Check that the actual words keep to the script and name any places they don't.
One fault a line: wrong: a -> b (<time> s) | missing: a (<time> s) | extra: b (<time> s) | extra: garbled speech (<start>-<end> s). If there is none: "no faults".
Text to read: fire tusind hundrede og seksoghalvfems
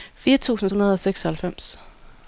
no faults